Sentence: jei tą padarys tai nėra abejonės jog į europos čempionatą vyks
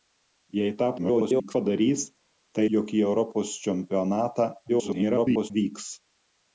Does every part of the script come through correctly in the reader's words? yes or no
no